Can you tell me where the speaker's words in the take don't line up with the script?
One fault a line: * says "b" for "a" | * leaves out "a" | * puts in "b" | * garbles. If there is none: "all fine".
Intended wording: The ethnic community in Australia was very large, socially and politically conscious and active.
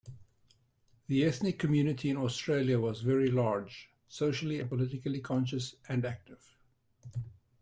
all fine